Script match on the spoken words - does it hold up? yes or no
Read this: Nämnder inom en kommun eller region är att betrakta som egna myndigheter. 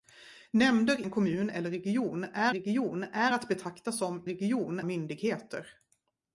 no